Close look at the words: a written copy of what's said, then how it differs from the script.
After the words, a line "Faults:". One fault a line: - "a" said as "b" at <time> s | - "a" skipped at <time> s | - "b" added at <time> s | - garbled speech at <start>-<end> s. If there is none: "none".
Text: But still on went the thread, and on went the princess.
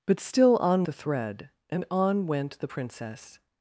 But still on the thread, and on went the princess.
Faults:
- "went" skipped at 0.8 s